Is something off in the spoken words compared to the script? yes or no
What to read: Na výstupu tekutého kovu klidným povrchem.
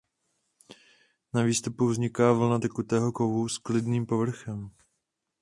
yes